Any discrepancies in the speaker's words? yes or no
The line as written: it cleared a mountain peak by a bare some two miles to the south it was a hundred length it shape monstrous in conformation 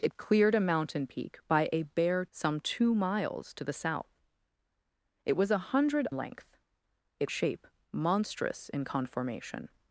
no